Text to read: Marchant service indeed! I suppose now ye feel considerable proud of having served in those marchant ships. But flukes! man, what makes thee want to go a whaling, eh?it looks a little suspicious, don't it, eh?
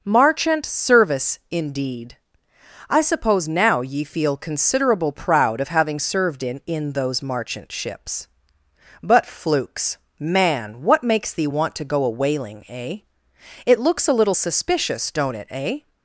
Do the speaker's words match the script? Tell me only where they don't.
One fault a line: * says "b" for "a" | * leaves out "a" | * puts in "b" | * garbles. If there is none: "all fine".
* puts in "in"